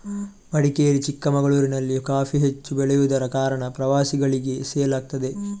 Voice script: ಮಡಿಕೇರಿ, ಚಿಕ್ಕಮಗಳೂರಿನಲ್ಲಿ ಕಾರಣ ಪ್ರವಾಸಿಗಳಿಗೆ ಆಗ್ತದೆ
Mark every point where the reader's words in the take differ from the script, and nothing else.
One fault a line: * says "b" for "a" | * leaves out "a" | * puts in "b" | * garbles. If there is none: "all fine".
* puts in "ಕಾಫಿ ಹೆಚ್ಚು ಬೆಳೆಯುದರ"
* puts in "ಸೇಲ್"